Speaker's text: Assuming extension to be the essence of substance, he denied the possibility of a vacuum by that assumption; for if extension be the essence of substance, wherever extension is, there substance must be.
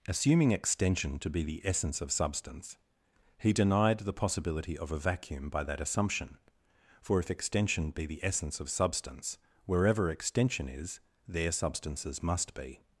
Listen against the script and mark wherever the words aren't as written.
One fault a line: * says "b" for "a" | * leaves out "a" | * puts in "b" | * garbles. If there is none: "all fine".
* says "substances" for "substance"